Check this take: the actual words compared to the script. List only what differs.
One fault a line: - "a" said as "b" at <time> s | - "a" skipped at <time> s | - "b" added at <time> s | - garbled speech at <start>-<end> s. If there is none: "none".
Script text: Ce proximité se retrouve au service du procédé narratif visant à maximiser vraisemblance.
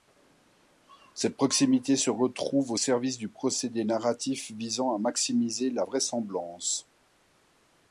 - "Ce" said as "Cette" at 1.1 s
- "la" added at 5.7 s